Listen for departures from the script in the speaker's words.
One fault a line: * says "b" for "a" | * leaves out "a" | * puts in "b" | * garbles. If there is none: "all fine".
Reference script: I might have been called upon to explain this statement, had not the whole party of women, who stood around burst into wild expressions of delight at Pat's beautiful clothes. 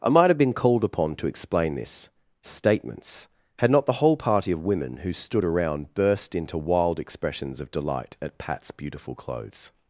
* says "statements" for "statement"